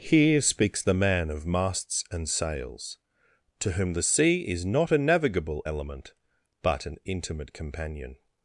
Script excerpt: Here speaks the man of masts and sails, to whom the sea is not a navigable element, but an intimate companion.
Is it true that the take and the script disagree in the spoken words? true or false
false